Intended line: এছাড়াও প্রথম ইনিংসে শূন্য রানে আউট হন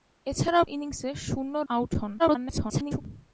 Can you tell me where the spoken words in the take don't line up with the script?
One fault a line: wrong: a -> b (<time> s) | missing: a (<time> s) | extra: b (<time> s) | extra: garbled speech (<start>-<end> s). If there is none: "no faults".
missing: প্রথম (0.7 s)
missing: রানে (1.5 s)
extra: garbled speech (2.2-3.0 s)